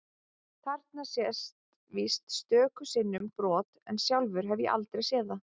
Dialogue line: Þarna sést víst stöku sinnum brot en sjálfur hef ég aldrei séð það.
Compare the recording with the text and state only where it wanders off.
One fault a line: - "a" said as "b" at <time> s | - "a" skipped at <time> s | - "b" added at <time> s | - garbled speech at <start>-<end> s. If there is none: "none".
none